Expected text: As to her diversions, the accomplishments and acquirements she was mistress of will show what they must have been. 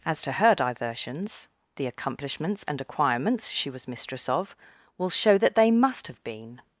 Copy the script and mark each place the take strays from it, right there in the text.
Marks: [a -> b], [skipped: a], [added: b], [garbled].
As to her diversions, the accomplishments and acquirements she was mistress of will show [what -> that] they must have been.